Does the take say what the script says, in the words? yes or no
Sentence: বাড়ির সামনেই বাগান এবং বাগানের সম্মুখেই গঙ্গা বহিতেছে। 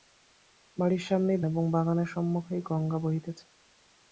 no